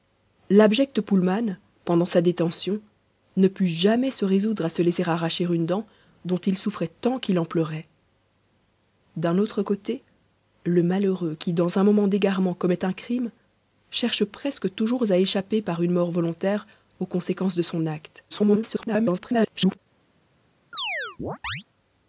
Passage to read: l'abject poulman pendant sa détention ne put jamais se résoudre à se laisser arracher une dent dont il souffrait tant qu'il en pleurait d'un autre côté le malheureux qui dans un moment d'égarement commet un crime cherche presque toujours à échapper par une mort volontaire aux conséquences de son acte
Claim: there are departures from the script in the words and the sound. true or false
true